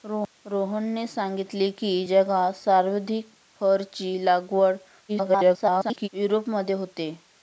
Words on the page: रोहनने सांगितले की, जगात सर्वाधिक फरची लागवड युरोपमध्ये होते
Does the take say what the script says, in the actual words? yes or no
no